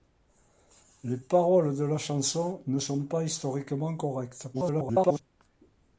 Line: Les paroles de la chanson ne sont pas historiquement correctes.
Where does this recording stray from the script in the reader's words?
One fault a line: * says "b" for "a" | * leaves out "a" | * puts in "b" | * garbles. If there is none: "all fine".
* garbles